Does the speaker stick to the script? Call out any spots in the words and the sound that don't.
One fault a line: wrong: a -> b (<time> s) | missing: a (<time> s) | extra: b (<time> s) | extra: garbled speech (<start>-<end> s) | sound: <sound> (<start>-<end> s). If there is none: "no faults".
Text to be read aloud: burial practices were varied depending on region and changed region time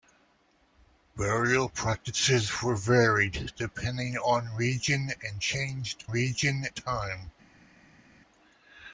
no faults